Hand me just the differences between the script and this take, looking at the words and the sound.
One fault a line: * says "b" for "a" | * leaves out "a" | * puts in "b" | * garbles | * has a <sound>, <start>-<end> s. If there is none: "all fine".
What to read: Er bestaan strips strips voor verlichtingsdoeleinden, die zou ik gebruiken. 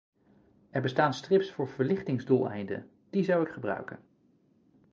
* leaves out "strips"